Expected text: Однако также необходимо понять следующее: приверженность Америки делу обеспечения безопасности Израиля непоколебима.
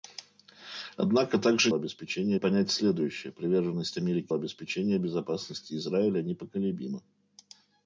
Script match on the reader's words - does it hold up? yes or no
no